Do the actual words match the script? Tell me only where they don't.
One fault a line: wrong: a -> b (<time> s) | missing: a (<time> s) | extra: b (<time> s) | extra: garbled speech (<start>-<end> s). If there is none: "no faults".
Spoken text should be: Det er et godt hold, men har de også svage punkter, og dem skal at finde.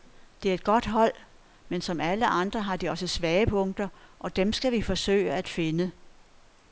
extra: som alle andre (1.8 s)
extra: vi forsøge (4.7 s)